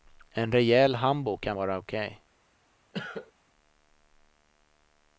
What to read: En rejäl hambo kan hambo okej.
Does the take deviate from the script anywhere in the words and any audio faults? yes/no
yes